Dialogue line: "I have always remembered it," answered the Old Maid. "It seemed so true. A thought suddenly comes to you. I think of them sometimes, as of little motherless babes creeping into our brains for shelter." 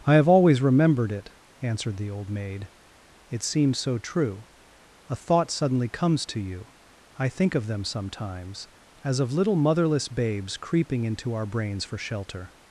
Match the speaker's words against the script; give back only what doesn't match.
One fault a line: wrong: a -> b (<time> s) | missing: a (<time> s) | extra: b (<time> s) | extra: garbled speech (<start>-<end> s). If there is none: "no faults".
wrong: seemed -> seems (3.4 s)